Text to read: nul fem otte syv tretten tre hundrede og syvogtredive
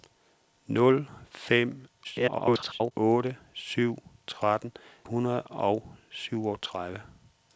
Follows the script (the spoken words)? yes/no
no